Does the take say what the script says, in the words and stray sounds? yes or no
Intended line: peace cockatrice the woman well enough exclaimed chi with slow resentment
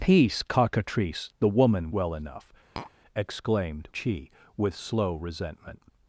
no